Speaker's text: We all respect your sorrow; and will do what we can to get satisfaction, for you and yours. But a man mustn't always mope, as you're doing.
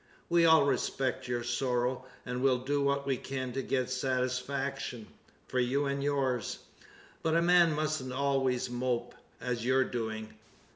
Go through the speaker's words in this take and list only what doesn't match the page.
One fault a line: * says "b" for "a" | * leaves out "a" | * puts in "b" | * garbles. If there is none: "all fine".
all fine